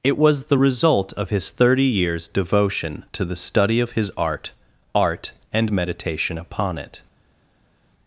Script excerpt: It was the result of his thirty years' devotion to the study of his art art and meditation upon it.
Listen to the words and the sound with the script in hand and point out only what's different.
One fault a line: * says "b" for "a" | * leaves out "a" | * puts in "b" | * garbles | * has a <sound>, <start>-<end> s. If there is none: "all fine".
all fine